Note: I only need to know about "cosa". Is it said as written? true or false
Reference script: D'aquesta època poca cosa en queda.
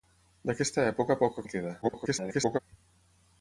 false